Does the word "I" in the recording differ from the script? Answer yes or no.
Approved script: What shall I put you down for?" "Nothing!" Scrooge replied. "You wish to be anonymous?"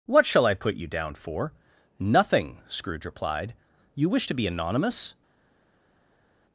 no